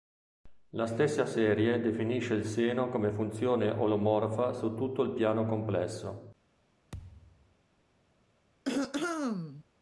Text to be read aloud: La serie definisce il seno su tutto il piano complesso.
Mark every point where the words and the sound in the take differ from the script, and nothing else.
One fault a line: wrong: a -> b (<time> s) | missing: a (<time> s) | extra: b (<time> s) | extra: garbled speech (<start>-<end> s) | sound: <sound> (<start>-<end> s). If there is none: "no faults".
extra: stessa (0.9 s)
extra: come funzione olomorfa (2.9 s)
sound: thud (6.9-7.6 s)
sound: throat clearing (8.6-9.6 s)